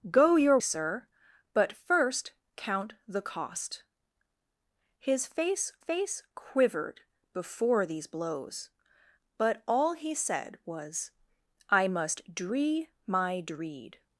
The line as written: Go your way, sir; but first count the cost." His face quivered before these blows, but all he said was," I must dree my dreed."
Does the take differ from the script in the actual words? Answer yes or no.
yes